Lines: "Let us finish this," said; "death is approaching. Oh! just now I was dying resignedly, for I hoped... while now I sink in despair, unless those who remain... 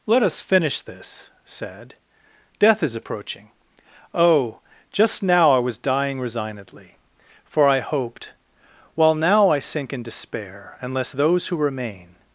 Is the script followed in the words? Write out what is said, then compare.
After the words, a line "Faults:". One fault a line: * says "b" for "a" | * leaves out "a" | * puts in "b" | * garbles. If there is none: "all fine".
"Let us finish this," said; "death is approaching. Oh! just now I was dying resignedly, for I hoped... while now I sink in despair, unless those who remain...
Faults:
all fine